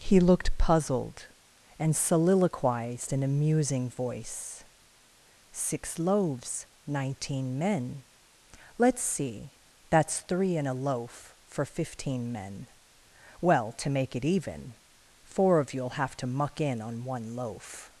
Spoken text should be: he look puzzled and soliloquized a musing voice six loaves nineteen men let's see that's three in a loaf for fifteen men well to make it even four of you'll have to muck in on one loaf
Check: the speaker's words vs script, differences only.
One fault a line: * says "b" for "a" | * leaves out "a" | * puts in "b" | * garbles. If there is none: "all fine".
* says "looked" for "look"
* puts in "in"